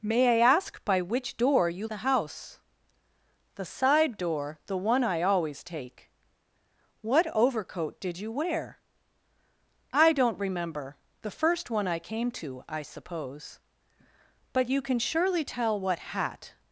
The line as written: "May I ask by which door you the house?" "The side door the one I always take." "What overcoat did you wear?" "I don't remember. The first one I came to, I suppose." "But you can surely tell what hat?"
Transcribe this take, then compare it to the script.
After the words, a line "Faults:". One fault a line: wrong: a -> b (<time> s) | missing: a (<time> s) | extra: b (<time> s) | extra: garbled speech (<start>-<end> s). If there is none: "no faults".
"May I ask by which door you the house?" "The side door the one I always take." "What overcoat did you wear?" "I don't remember. The first one I came to, I suppose." "But you can surely tell what hat?"
Faults:
no faults